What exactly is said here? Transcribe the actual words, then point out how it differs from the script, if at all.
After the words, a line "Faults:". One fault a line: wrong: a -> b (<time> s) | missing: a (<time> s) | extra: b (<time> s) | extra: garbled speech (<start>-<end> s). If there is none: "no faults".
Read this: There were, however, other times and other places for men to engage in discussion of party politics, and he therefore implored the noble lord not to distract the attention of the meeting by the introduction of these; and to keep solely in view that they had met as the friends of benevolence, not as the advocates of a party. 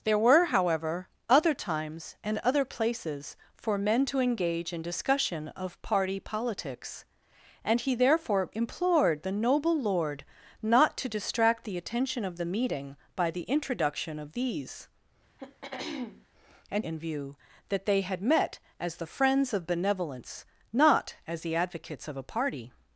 There were, however, other times and other places for men to engage in discussion of party politics, and he therefore implored the noble lord not to distract the attention of the meeting by the introduction of these; and in view that they had met as the friends of benevolence, not as the advocates of a party.
Faults:
missing: to keep solely (16.8 s)